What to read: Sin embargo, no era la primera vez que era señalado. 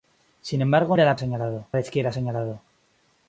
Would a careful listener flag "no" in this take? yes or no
yes